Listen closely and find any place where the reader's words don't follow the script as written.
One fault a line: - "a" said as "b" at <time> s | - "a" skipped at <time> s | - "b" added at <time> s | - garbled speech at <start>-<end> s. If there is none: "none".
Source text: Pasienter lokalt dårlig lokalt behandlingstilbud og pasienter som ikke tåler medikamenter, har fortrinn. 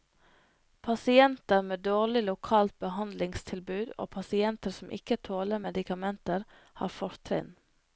- "lokalt" said as "med" at 1.6 s